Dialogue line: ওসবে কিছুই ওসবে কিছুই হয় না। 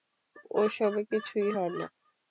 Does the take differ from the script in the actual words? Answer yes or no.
yes